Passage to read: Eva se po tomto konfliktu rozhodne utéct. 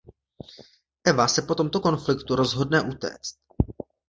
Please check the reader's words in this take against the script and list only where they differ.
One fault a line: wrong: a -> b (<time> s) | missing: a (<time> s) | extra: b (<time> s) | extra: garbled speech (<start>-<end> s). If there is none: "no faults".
no faults